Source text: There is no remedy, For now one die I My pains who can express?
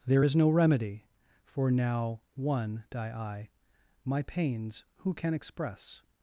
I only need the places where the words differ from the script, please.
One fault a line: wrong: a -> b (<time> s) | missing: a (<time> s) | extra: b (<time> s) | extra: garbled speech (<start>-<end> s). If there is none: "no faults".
no faults